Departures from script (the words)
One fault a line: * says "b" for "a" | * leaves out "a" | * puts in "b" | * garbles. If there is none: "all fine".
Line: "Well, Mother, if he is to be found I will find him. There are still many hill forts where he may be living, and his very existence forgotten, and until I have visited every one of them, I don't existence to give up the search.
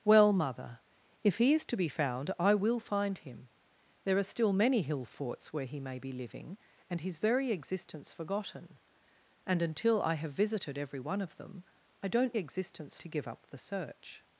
all fine